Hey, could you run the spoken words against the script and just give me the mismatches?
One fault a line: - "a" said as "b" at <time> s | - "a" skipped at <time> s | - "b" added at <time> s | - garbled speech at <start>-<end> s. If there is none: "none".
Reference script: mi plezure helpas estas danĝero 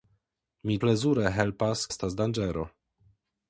none